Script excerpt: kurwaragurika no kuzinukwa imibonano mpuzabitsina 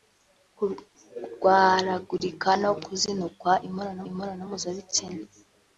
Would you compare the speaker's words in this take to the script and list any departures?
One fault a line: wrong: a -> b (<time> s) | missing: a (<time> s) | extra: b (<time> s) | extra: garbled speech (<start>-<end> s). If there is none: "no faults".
extra: imibonano (4.1 s)